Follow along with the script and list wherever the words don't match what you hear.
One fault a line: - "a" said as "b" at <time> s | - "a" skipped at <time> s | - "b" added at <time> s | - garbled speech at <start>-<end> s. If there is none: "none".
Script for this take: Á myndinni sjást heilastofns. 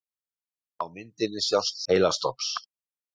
none